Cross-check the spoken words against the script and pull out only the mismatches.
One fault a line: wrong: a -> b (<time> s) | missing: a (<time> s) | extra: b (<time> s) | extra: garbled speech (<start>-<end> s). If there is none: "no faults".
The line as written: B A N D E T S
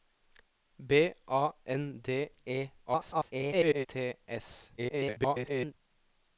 extra: garbled speech (2.9-3.9 s)
extra: garbled speech (4.8-5.7 s)